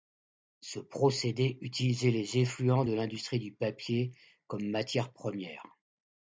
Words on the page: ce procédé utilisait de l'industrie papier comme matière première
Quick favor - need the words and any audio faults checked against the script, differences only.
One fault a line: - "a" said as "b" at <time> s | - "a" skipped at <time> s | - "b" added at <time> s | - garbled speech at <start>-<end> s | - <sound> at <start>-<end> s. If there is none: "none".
- "les effluents" added at 2.1 s
- "du" added at 3.4 s